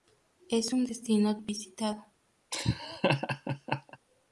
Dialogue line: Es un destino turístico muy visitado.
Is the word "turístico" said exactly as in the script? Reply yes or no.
no